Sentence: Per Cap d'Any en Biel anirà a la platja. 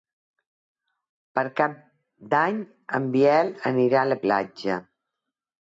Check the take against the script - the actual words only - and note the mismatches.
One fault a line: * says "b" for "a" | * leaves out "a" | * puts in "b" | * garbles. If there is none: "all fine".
all fine